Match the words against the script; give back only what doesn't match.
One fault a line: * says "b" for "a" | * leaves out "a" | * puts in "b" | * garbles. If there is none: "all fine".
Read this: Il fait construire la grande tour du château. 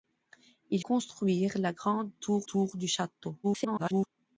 * leaves out "fait"
* puts in "tour"
* garbles